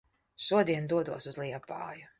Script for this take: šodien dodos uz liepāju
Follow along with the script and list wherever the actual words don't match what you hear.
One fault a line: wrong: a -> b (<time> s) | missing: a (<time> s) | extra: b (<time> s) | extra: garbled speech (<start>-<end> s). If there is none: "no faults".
no faults